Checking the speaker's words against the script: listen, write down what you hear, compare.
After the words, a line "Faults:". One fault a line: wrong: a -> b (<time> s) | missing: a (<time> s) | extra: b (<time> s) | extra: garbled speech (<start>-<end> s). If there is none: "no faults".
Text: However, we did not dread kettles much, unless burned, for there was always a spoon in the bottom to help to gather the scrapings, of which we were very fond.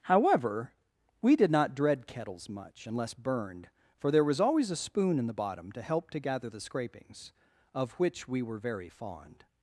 However, we did not dread kettles much, unless burned, for there was always a spoon in the bottom to help to gather the scrapings, of which we were very fond.
Faults:
no faults